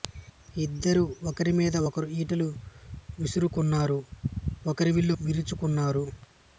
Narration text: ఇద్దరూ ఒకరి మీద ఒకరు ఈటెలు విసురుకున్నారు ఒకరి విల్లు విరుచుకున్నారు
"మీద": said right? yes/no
yes